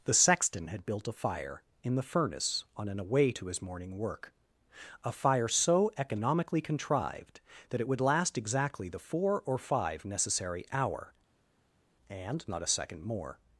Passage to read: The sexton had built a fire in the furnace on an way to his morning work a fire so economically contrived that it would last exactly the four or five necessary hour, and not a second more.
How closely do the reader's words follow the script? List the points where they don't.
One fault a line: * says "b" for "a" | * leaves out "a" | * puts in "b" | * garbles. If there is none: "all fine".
all fine